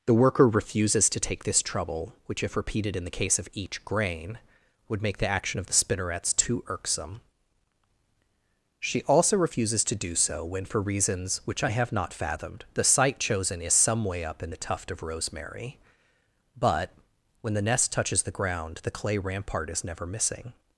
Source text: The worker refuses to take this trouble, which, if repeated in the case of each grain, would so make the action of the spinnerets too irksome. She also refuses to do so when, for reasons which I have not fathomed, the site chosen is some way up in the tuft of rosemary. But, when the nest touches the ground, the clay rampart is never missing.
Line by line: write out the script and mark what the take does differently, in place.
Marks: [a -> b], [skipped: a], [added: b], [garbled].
The worker refuses to take this trouble, which, if repeated in the case of each grain, would [skipped: so] make the action of the spinnerets too irksome. She also refuses to do so when, for reasons which I have not fathomed, the site chosen is some way up in the tuft of rosemary. But, when the nest touches the ground, the clay rampart is never missing.